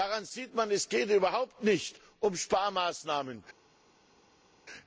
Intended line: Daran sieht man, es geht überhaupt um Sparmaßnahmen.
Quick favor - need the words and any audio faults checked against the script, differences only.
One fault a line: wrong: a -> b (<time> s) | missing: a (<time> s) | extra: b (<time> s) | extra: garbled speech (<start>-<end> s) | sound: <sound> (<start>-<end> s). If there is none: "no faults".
extra: nicht (1.6 s)